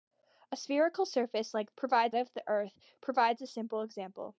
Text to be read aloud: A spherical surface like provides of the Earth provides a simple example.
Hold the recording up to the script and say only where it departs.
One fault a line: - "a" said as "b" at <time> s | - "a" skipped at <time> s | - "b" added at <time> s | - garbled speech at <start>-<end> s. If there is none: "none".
none